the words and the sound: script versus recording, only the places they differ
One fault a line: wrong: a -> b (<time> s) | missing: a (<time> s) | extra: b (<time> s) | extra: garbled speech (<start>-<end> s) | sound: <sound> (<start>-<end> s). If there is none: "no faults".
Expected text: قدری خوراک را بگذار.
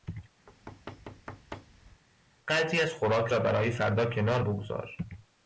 sound: thud (0.5-2.0 s)
extra: از (2.8 s)
extra: برای فردا کنار (3.4 s)